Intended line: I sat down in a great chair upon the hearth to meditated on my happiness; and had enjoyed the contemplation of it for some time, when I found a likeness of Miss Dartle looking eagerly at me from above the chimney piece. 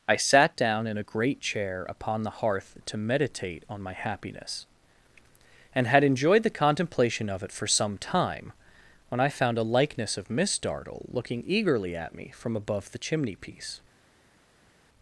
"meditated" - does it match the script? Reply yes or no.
no